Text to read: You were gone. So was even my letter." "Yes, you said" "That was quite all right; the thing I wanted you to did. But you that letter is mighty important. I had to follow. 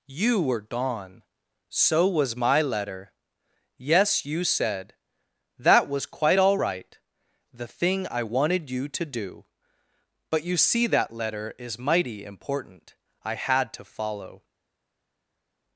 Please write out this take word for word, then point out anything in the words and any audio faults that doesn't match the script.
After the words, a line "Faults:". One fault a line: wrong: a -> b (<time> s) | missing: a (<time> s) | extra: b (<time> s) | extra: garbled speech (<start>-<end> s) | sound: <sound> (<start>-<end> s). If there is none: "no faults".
You were gone. So was my letter." "Yes, you said" "That was quite all right; the thing I wanted you to do. But you see that letter is mighty important. I had to follow.
Faults:
missing: even (2.4 s)
wrong: did -> do (9.1 s)
extra: see (10.6 s)